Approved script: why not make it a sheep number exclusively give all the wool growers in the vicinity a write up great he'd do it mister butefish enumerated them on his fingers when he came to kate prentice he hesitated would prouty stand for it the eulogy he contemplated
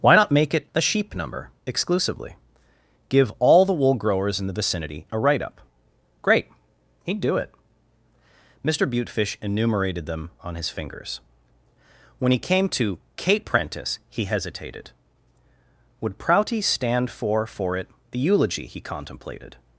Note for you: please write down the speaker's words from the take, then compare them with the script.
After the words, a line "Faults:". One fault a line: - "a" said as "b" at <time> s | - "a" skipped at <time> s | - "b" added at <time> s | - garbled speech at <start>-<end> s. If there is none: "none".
why not make it a sheep number exclusively give all the wool growers in the vicinity a write up great he'd do it mister butefish enumerated them on his fingers when he came to kate prentice he hesitated would prouty stand for for it the eulogy he contemplated
Faults:
- "for" added at 17.5 s